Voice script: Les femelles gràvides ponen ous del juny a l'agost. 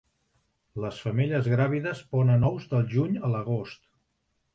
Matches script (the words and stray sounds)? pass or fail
pass